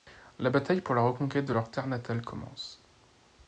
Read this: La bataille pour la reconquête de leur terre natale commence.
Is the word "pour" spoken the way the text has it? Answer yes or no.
yes